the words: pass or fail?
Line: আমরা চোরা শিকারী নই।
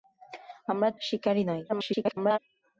fail